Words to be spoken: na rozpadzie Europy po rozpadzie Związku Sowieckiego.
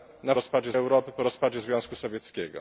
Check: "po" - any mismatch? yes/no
no